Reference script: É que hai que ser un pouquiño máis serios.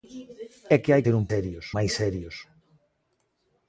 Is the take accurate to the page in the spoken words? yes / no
no